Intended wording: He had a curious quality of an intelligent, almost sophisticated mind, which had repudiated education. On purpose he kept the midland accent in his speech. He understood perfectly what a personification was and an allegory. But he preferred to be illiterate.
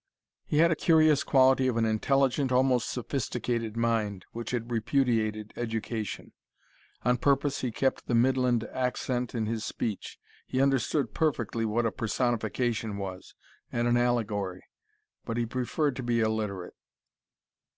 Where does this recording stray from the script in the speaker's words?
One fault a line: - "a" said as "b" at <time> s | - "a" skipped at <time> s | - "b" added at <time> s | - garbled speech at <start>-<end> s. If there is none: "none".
none